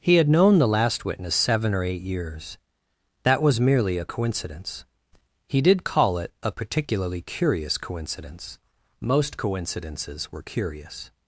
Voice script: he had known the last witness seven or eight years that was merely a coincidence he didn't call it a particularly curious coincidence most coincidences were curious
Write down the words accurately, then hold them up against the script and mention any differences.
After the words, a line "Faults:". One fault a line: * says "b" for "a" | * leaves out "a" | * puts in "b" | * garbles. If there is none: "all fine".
he had known the last witness seven or eight years that was merely a coincidence he did call it a particularly curious coincidence most coincidences were curious
Faults:
* says "did" for "didn't"